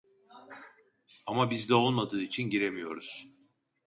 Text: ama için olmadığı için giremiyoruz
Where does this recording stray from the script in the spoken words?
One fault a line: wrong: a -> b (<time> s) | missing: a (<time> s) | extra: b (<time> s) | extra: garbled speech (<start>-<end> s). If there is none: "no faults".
wrong: için -> bizde (1.5 s)